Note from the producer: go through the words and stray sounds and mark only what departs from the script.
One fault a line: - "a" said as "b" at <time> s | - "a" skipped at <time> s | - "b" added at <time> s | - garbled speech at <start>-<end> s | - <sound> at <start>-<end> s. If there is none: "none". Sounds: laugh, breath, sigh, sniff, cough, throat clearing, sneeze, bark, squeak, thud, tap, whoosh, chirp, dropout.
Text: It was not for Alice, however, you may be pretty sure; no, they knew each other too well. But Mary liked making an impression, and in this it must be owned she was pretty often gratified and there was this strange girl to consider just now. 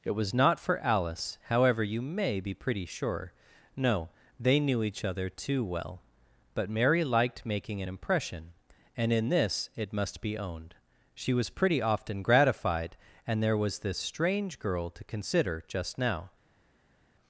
none